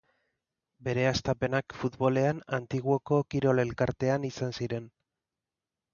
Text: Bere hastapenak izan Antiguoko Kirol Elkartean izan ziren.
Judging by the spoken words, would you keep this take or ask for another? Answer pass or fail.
fail